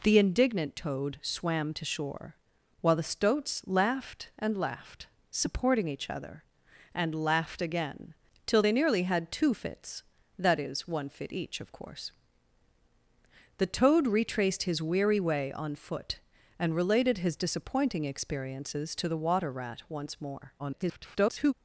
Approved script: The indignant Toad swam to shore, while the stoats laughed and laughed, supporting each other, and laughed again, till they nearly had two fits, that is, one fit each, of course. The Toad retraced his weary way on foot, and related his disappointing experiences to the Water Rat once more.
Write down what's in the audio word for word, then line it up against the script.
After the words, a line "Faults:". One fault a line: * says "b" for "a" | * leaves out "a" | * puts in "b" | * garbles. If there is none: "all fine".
The indignant Toad swam to shore, while the stoats laughed and laughed, supporting each other, and laughed again, till they nearly had two fits, that is, one fit each, of course. The Toad retraced his weary way on foot, and related his disappointing experiences to the Water Rat once more. [garbled]
Faults:
* garbles